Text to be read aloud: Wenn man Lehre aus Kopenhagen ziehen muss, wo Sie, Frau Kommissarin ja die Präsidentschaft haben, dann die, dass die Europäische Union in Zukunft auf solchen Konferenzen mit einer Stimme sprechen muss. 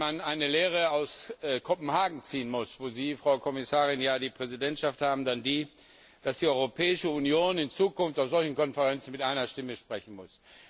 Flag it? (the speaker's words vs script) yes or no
yes